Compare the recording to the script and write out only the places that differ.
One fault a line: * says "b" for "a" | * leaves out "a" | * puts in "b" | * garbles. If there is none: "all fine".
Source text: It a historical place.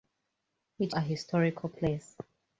all fine